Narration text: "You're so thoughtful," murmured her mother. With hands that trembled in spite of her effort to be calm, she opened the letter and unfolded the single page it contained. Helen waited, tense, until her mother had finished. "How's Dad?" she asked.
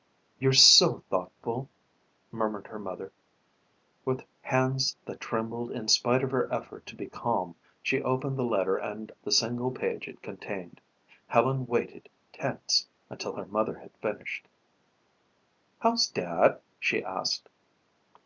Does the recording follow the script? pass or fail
fail